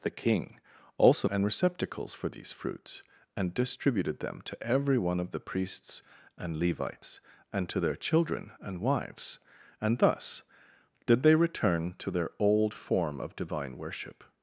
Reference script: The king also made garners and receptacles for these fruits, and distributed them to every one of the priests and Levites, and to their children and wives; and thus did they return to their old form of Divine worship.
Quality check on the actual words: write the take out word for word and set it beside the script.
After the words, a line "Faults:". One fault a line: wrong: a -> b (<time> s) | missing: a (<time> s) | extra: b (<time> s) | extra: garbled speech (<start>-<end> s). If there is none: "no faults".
The king also and receptacles for these fruits, and distributed them to every one of the priests and Levites, and to their children and wives; and thus did they return to their old form of Divine worship.
Faults:
missing: made garners (1.3 s)